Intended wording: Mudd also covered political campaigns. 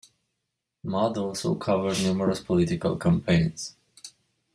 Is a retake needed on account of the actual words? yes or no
yes